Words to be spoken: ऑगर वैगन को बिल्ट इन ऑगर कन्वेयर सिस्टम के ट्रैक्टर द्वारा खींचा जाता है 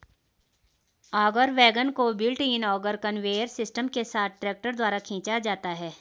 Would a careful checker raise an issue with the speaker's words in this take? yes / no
yes